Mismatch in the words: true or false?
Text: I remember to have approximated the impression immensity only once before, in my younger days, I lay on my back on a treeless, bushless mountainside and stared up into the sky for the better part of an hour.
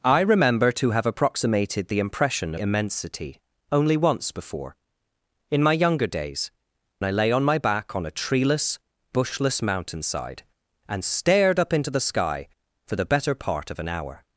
false